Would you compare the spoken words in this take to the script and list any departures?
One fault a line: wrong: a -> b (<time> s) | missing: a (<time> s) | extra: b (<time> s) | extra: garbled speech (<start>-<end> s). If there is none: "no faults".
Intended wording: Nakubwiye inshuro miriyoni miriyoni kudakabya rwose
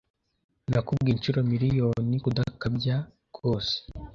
missing: miriyoni (2.2 s)